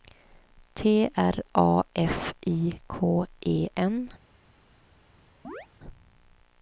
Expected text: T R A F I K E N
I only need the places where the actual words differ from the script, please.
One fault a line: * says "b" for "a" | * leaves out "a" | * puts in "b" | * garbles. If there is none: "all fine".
all fine